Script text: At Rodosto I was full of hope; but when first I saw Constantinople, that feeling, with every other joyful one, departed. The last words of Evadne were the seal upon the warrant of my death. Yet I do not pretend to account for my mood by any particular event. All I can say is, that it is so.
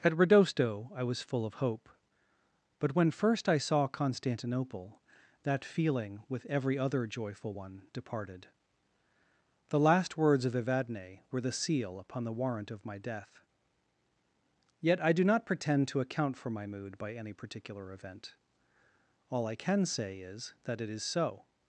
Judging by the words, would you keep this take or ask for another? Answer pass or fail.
pass